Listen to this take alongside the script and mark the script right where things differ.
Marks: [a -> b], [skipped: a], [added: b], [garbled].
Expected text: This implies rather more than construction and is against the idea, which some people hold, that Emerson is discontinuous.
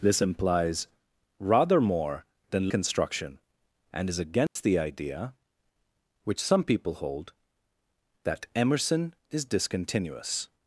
This implies rather more than construction and is against the idea, which some people hold, that Emerson is discontinuous.